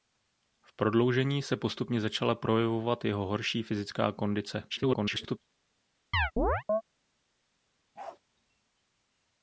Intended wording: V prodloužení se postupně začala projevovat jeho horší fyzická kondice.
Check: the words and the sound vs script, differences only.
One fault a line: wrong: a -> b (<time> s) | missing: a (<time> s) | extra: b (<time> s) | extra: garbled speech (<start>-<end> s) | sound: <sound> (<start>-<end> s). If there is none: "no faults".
extra: garbled speech (4.7-5.4 s)
sound: chirp (6.1-6.8 s)
sound: bark (8.0-8.2 s)